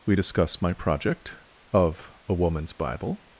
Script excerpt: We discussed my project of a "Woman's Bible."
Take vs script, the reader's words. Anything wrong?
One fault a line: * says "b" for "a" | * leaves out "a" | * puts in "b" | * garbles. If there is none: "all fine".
* says "discuss" for "discussed"